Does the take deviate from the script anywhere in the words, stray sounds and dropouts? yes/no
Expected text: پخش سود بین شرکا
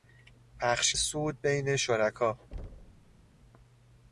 yes